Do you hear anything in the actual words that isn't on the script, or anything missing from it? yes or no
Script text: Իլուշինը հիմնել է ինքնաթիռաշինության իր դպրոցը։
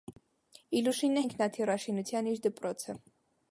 yes